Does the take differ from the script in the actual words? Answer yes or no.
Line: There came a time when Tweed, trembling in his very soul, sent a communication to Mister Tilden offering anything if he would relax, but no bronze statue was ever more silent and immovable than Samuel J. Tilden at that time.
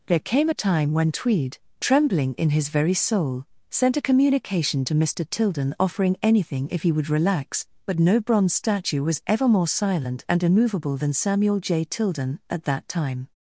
no